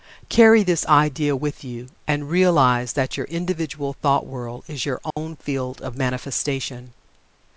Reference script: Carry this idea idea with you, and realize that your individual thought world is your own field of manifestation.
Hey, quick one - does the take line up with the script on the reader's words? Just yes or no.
no